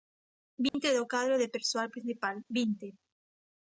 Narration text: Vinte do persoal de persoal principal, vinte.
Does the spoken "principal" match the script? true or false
true